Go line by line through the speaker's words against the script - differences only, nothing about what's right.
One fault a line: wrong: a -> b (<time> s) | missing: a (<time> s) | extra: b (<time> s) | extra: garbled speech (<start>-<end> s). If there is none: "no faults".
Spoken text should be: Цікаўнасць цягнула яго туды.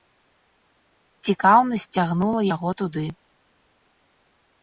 no faults